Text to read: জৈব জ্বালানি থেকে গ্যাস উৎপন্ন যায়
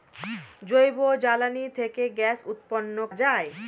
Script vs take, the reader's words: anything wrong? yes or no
no